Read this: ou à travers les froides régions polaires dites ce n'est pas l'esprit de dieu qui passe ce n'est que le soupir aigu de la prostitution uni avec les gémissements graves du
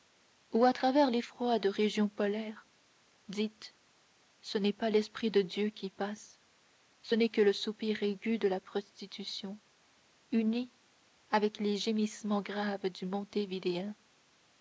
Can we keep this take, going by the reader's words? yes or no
yes